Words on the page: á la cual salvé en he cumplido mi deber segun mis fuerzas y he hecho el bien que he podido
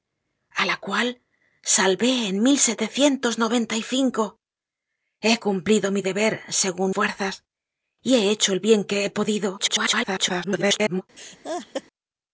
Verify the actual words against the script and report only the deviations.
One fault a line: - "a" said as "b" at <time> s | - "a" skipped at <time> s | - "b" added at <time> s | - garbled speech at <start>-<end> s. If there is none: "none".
- "mis" skipped at 6.9 s
- garbled speech at 9.6-11.0 s